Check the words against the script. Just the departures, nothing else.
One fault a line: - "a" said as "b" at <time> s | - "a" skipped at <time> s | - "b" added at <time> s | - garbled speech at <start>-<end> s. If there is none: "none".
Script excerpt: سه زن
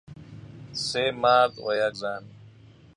- "مرد و یک" added at 1.1 s